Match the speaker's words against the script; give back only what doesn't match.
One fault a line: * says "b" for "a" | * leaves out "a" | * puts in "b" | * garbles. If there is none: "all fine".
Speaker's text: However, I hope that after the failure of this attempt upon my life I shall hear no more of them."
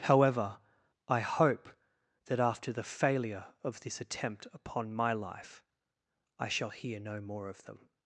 all fine